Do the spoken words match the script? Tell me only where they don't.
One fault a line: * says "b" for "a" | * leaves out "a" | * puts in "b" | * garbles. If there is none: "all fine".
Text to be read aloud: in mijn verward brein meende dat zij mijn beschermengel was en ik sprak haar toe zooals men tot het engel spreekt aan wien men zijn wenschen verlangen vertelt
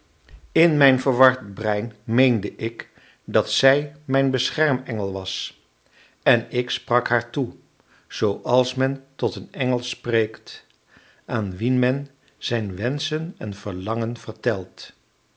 * puts in "ik"
* says "een" for "het"
* puts in "en"